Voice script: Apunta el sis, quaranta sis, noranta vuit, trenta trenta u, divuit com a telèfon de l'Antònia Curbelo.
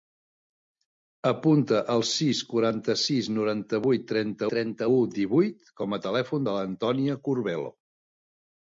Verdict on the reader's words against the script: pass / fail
pass